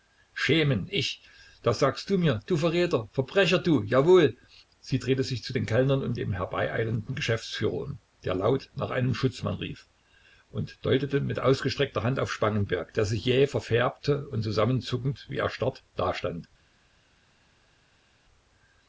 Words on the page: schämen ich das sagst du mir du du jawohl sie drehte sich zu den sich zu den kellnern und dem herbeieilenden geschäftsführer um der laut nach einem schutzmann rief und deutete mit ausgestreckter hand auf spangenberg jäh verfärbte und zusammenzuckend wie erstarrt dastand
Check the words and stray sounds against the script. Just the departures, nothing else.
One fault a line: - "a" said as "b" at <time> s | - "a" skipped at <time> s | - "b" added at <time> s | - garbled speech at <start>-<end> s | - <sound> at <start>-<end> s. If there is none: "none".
- "verräter verbrecher" added at 2.6 s
- "sich zu den" skipped at 5.7 s
- "der sich" added at 12.9 s